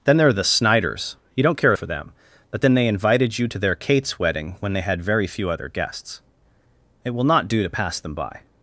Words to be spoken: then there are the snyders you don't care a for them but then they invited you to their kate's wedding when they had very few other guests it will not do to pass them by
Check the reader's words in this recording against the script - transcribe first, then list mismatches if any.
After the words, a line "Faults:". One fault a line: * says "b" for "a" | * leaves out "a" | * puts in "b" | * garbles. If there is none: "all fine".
then there are the snyders you don't care a for them but then they invited you to their kate's wedding when they had very few other guests it will not do to pass them by
Faults:
all fine